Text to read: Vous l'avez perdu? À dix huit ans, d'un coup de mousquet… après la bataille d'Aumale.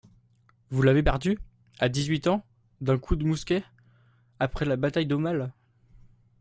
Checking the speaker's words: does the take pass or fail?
pass